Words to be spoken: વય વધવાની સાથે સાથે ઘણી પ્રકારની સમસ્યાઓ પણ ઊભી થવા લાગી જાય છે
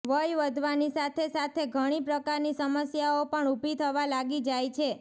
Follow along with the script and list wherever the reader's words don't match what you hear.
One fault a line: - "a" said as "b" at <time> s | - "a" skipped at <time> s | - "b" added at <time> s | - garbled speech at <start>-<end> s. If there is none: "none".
none